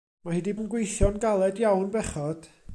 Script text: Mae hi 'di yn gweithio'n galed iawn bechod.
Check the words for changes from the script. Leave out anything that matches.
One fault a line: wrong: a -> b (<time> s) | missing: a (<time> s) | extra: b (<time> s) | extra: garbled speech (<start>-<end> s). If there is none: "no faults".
no faults